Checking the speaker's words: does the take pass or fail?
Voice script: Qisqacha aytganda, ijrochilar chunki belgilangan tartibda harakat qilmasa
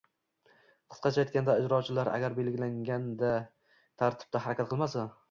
fail